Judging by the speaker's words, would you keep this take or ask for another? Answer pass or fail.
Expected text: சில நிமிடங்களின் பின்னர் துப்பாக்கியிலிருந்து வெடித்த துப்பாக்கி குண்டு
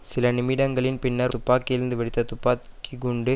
pass